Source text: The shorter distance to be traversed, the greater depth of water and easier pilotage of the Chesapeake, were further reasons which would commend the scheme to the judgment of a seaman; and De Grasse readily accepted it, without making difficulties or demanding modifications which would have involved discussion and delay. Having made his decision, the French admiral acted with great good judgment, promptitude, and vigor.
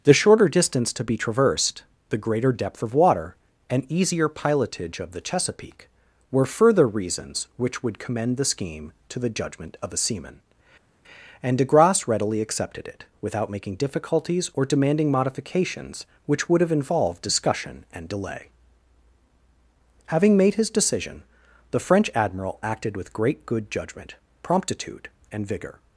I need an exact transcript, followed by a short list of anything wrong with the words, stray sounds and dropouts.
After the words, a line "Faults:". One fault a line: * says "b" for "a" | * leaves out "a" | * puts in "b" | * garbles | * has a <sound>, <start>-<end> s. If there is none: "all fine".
The shorter distance to be traversed, the greater depth of water and easier pilotage of the Chesapeake, were further reasons which would commend the scheme to the judgment of a seaman; and De Grasse readily accepted it, without making difficulties or demanding modifications which would have involved discussion and delay. Having made his decision, the French admiral acted with great good judgment, promptitude, and vigor.
Faults:
all fine